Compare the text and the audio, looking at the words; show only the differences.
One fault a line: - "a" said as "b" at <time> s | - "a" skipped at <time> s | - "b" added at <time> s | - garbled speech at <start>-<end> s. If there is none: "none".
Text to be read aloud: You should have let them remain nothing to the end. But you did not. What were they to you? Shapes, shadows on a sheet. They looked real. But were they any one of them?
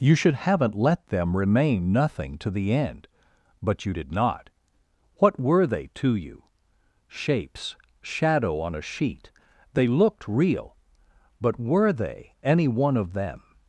- "have" said as "haven't" at 0.3 s
- "shadows" said as "shadow" at 8.0 s